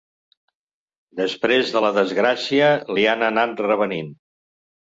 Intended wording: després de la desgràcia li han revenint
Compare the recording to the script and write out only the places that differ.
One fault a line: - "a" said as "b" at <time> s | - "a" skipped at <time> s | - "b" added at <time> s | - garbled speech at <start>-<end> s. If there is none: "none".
- "anat" added at 3.3 s